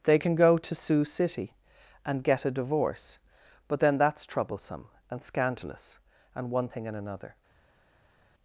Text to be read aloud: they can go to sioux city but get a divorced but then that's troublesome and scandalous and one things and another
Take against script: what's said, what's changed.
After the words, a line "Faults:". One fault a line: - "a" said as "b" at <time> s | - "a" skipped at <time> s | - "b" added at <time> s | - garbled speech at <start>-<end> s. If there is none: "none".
they can go to sioux city and get a divorce but then that's troublesome and scandalous and one thing and another
Faults:
- "but" said as "and" at 2.0 s
- "divorced" said as "divorce" at 2.5 s
- "things" said as "thing" at 6.7 s